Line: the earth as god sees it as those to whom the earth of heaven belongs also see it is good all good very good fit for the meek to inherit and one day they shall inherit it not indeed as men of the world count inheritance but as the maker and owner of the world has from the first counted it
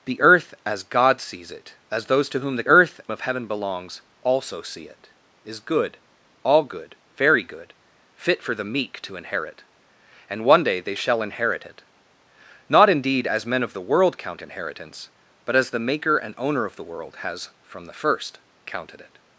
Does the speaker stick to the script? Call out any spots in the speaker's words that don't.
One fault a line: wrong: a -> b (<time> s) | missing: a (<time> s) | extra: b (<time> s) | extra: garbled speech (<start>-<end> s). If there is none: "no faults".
no faults